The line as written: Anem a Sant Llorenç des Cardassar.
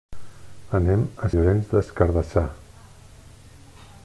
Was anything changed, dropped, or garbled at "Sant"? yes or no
yes